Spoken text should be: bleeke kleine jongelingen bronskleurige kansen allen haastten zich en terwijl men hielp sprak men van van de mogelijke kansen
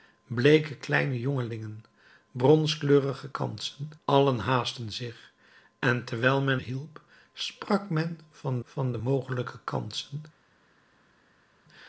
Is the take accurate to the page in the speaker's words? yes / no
yes